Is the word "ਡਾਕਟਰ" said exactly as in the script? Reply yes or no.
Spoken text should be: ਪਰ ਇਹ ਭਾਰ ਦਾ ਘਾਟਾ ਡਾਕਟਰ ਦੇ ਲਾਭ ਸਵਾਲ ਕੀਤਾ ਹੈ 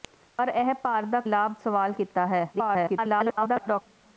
no